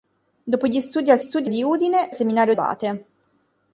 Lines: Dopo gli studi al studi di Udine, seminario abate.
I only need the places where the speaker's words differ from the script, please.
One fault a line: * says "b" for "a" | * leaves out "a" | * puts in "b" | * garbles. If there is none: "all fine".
all fine